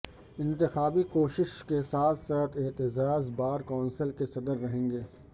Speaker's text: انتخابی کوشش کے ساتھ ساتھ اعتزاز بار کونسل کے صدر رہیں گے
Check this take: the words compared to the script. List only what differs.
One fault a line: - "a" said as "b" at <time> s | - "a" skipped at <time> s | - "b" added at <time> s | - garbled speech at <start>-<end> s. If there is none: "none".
none